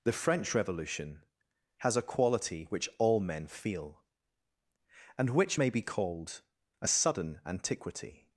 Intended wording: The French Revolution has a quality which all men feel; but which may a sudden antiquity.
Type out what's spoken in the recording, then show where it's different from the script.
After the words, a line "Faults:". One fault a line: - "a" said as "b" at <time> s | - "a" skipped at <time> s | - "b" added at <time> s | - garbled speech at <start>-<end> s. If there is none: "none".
The French Revolution has a quality which all men feel; and which may be called a sudden antiquity.
Faults:
- "but" said as "and" at 5.2 s
- "be called" added at 5.7 s